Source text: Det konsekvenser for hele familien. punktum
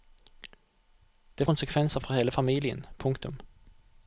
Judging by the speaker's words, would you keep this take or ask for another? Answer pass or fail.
pass